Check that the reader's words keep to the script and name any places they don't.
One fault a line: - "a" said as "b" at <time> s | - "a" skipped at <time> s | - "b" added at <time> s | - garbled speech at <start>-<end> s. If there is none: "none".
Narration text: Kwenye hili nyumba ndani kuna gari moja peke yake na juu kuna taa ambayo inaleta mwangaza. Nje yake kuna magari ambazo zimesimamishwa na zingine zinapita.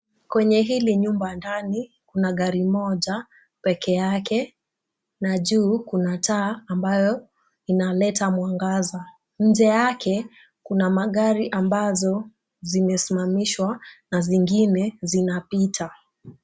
none